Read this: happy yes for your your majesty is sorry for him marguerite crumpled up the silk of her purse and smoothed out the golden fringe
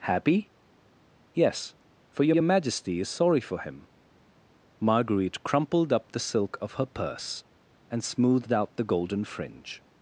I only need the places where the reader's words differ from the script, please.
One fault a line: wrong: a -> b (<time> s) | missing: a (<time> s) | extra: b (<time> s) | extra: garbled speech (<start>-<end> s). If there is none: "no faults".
no faults